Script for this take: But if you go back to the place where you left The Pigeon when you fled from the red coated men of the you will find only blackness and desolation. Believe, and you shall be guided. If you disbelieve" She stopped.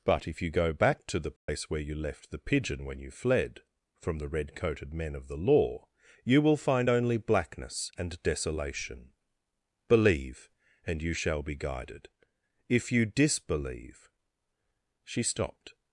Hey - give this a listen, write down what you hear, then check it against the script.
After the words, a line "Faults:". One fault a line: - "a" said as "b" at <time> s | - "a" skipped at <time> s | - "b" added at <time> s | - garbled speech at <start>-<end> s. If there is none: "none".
But if you go back to the place where you left The Pigeon when you fled from the red coated men of the law, you will find only blackness and desolation. Believe, and you shall be guided. If you disbelieve" She stopped.
Faults:
- "law" added at 5.4 s